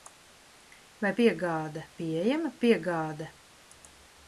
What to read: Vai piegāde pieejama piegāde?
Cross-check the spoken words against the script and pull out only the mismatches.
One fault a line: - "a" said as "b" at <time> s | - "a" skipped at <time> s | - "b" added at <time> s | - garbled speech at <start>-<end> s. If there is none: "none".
none